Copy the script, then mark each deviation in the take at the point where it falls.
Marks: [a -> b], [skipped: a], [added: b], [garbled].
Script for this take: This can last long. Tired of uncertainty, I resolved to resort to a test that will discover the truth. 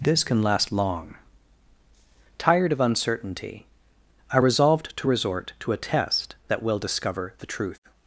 This can last long. Tired of uncertainty, I resolved to resort to a test that will discover the truth.